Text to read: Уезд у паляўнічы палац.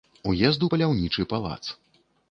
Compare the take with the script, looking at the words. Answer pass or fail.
pass